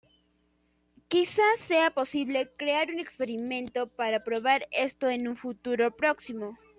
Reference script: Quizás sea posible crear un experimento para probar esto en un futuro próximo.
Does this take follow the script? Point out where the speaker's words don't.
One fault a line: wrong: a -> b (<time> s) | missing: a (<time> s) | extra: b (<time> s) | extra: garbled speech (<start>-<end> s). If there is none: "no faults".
no faults